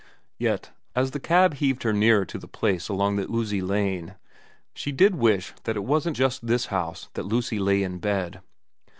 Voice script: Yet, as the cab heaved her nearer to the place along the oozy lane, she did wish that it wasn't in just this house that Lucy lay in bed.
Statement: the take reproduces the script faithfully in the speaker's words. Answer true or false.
false